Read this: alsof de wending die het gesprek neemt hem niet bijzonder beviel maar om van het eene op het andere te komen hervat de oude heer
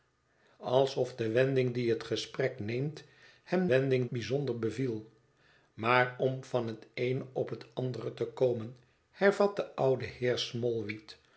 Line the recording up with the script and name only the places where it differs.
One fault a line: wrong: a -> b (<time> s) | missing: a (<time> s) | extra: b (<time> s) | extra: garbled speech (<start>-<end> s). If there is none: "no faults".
wrong: niet -> wending (3.7 s)